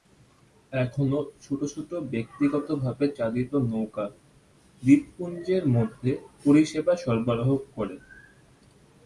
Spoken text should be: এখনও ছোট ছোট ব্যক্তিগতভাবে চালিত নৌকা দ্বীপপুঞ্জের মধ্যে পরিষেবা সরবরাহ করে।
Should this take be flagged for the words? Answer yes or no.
no